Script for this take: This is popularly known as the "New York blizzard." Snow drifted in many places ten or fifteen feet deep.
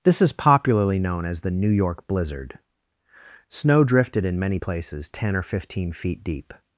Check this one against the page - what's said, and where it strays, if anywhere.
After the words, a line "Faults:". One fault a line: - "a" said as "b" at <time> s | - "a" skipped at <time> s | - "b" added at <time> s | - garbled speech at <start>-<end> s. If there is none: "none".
This is popularly known as the "New York blizzard." Snow drifted in many places ten or fifteen feet deep.
Faults:
none